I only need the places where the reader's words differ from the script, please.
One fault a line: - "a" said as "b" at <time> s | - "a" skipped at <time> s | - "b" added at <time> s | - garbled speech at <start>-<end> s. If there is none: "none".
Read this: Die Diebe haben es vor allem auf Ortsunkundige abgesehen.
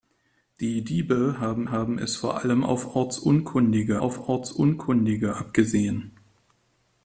- "haben" added at 1.7 s
- "auf Ortsunkundige" added at 4.0 s